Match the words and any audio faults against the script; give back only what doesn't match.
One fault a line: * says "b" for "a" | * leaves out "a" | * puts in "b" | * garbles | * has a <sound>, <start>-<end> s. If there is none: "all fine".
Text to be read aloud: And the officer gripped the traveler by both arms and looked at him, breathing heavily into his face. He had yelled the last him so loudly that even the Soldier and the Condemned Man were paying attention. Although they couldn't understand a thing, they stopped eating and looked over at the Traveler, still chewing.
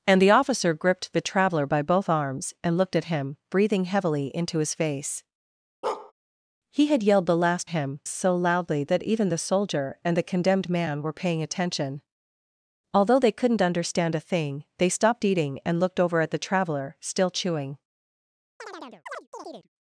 * has a bark, 5.8-6.1 s
* has a chirp, 18.6-19.7 s